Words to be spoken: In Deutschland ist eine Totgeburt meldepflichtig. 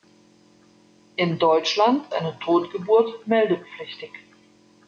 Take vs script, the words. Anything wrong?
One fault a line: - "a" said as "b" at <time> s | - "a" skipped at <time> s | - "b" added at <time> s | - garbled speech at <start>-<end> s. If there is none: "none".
- "ist" skipped at 2.1 s